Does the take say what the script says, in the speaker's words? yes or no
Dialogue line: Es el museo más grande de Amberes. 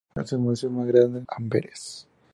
no